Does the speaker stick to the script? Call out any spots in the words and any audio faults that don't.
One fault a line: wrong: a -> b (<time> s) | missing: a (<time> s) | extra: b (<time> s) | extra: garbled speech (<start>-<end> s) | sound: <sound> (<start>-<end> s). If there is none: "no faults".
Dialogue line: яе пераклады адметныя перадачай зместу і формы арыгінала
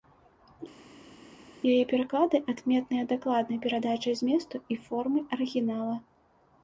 extra: дакладнай (3.1 s)